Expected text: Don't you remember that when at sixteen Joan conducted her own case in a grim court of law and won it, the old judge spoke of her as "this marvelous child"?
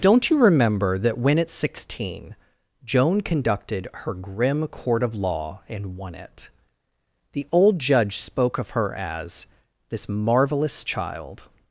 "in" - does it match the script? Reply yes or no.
no